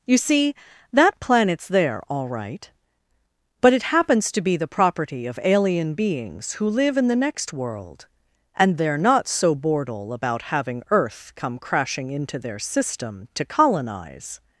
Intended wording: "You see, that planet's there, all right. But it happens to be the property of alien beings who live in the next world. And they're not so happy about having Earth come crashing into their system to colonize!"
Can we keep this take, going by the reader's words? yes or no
no